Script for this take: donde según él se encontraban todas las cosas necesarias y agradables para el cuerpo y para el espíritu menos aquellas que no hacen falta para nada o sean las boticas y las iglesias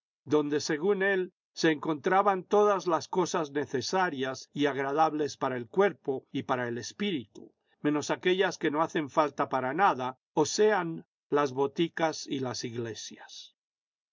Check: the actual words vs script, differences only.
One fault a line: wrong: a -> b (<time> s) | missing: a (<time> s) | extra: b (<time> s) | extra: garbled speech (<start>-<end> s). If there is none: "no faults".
no faults